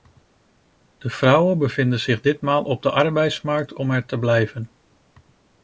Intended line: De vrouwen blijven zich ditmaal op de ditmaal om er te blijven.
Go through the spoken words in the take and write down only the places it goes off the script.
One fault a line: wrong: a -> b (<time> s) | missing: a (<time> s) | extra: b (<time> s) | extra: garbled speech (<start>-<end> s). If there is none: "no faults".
wrong: blijven -> bevinden (1.6 s)
wrong: ditmaal -> arbeidsmarkt (2.9 s)